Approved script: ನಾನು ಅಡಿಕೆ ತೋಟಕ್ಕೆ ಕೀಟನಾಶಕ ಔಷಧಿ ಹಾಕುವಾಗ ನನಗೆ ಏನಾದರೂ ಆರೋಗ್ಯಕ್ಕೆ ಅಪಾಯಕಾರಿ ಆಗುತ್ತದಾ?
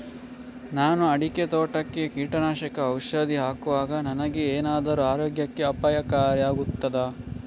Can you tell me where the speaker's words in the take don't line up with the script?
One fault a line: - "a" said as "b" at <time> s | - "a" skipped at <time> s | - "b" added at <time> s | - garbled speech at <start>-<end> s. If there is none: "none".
none